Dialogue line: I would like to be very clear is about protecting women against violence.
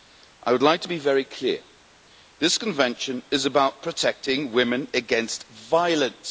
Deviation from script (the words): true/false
true